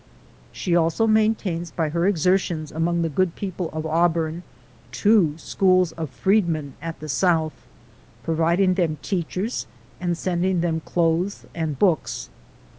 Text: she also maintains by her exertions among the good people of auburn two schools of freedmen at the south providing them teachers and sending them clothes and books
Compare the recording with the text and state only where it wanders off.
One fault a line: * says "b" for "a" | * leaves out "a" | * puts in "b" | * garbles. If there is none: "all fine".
all fine